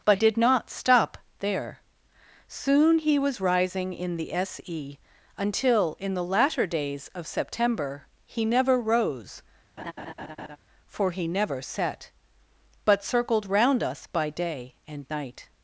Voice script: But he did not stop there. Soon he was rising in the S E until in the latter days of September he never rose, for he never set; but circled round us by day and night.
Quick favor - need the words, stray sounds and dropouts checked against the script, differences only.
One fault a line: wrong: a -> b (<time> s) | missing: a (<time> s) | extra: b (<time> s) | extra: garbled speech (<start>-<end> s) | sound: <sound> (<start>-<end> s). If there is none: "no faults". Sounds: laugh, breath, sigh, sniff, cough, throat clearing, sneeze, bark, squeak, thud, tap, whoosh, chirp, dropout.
missing: he (0.2 s)
sound: laugh (9.8-10.6 s)